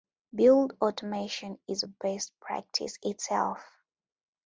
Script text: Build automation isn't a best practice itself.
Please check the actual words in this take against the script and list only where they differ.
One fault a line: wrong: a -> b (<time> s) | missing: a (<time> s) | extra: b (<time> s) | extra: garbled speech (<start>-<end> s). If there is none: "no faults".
wrong: isn't -> is (1.7 s)